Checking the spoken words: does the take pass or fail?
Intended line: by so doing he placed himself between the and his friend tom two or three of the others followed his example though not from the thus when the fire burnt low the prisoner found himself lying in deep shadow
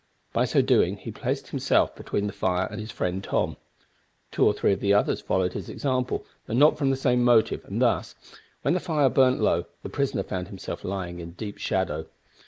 fail